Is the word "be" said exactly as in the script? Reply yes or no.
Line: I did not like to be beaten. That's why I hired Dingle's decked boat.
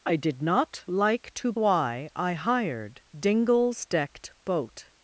no